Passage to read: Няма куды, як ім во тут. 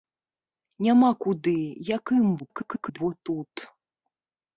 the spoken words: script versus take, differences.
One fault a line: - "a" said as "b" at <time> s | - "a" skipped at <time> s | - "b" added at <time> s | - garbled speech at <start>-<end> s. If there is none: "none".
- garbled speech at 2.4-3.0 s